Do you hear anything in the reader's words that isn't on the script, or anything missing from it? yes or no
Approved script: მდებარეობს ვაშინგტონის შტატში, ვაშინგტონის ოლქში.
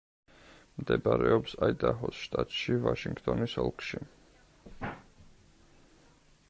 yes